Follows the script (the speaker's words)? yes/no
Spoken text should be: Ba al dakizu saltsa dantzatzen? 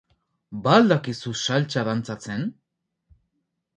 yes